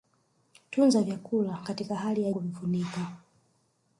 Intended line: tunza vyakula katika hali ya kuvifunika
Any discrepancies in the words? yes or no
no